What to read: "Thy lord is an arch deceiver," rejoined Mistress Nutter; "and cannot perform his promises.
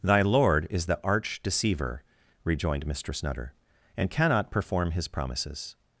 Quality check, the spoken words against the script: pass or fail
fail